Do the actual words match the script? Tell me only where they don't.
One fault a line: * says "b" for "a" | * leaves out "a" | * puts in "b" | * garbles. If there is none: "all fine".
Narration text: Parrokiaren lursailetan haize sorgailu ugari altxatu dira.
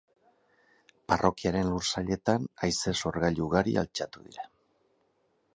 all fine